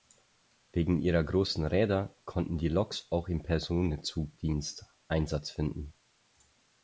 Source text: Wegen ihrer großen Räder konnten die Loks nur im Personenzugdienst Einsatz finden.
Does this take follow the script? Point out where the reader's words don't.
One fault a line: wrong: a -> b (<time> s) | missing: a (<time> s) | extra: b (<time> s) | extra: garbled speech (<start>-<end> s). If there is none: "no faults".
wrong: nur -> auch (3.1 s)